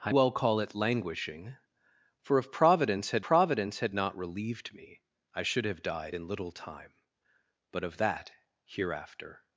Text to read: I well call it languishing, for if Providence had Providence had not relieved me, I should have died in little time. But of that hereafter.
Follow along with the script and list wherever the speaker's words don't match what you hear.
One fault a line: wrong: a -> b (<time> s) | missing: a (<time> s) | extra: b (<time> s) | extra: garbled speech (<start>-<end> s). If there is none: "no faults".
no faults